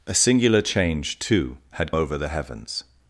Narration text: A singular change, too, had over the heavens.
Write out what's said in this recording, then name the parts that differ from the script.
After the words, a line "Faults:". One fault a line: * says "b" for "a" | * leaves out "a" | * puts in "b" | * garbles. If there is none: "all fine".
A singular change, too, had over the heavens.
Faults:
all fine